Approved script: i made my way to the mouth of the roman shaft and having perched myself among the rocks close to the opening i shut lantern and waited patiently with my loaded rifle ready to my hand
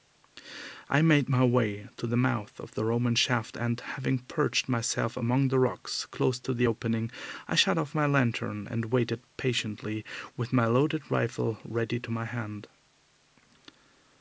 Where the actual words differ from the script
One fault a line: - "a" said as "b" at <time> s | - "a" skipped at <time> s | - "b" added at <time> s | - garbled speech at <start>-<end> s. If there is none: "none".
- "off my" added at 7.8 s